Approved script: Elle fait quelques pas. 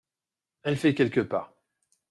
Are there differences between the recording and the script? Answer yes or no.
no